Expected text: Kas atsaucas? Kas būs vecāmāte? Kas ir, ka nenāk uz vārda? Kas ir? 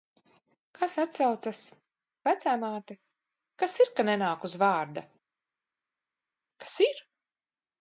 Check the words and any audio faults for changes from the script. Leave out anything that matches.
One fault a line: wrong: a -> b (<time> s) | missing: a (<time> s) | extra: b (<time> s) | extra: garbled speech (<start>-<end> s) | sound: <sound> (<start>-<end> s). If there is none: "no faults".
missing: Kas būs (1.6 s)